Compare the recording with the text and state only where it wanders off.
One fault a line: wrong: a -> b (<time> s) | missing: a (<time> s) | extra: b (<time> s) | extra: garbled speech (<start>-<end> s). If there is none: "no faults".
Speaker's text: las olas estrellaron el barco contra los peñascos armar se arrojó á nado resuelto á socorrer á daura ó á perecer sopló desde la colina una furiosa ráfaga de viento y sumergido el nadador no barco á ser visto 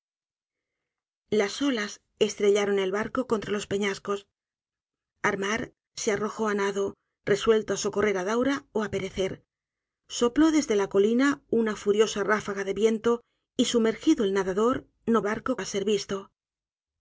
no faults